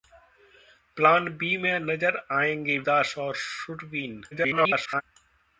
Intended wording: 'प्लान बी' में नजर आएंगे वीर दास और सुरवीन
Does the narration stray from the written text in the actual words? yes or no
yes